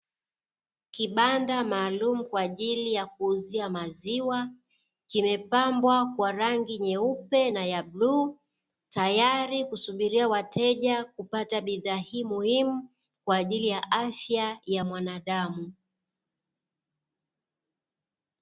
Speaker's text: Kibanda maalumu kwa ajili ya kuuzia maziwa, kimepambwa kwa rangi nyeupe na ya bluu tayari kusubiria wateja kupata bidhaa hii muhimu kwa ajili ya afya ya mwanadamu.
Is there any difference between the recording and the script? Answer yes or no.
no